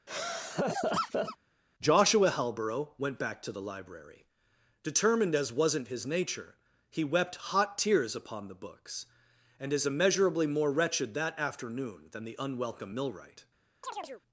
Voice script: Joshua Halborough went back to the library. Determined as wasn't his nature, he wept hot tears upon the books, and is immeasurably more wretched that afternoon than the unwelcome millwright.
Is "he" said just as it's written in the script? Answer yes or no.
yes